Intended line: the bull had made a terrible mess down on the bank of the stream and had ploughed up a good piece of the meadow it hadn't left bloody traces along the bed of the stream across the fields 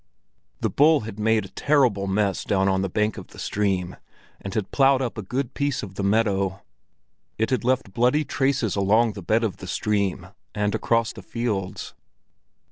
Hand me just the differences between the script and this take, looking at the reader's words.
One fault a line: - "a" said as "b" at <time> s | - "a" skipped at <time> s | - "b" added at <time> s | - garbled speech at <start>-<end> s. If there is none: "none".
- "hadn't" said as "had" at 7.5 s
- "and" added at 10.5 s